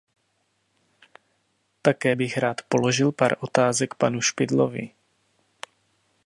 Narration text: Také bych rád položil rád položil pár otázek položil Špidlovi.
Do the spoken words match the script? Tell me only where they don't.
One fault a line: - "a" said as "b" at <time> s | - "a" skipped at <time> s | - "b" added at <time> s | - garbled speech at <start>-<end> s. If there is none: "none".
- "rád položil" skipped at 3.1 s
- "položil" said as "panu" at 3.9 s